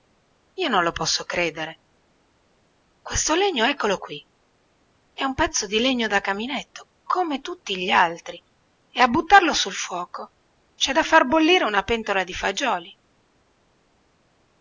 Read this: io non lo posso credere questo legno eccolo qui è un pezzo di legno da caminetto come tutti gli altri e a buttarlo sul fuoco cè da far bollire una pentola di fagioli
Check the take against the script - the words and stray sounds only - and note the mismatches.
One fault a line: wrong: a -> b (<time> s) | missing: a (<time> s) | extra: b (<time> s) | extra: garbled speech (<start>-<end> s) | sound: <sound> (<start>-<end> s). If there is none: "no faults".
no faults